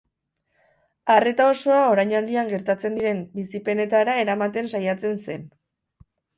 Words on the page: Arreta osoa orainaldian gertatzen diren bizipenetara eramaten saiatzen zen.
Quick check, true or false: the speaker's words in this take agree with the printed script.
true